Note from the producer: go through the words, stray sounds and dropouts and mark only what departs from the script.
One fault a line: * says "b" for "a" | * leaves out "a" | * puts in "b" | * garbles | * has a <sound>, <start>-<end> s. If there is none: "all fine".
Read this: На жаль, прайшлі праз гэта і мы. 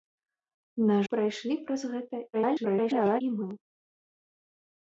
* leaves out "жаль"
* garbles